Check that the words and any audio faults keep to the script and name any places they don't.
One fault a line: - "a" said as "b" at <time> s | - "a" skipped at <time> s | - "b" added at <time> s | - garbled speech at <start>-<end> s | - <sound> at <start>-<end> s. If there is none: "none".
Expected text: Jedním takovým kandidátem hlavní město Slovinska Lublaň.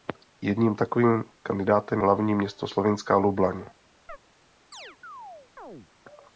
- chirp at 4.1-4.2 s
- chirp at 4.7-5.9 s